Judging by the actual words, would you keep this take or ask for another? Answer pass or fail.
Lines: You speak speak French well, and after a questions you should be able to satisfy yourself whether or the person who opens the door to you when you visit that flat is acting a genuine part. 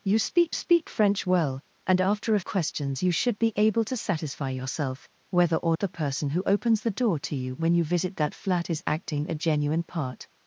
pass